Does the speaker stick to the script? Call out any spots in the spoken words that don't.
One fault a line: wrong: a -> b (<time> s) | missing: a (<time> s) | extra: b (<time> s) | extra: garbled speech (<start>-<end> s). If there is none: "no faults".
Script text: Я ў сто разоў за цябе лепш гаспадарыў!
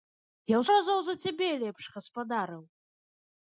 missing: сто (0.7 s)